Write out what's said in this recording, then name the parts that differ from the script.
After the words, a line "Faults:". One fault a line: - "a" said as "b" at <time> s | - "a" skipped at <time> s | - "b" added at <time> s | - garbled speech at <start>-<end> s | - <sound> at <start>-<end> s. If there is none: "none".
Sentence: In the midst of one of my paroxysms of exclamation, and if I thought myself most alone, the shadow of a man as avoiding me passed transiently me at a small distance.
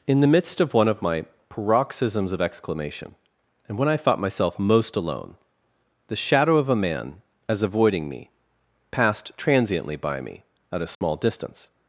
In the midst of one of my paroxysms of exclamation, and when I thought myself most alone, the shadow of a man as avoiding me passed transiently by me at a small distance.
Faults:
- "if" said as "when" at 3.8 s
- "by" added at 10.0 s
- dropout at 10.9-11.0 s